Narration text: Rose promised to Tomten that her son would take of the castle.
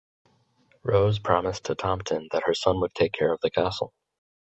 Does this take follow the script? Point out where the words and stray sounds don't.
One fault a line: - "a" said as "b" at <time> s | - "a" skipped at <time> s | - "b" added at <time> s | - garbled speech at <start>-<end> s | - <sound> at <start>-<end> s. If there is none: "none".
- "care" added at 3.1 s